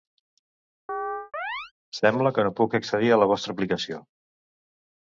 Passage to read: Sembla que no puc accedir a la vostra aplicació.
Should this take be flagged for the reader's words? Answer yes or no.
no